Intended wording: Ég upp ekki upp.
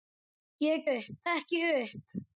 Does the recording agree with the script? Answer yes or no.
yes